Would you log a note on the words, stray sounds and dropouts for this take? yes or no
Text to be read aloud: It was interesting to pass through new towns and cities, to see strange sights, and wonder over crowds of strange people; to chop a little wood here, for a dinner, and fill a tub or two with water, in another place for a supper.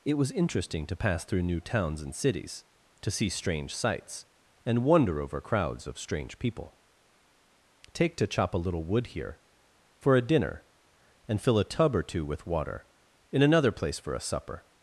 yes